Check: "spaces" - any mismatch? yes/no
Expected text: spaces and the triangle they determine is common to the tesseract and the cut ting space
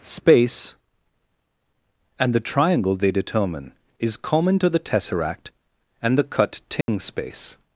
yes